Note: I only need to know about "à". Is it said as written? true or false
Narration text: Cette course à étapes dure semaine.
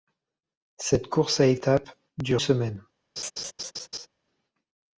true